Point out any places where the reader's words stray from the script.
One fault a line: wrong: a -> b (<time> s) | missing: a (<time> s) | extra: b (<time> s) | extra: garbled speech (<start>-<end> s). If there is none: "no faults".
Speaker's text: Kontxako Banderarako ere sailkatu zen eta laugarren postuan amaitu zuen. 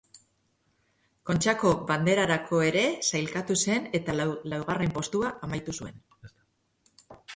no faults